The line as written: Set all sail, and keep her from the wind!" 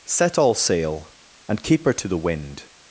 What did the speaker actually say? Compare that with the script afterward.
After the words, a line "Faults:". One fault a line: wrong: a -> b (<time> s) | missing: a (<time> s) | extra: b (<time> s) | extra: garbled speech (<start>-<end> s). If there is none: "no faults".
Set all sail, and keep her to the wind!"
Faults:
wrong: from -> to (1.9 s)